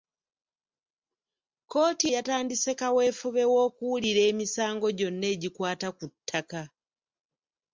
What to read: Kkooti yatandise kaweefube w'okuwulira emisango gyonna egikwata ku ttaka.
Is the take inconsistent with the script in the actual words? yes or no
no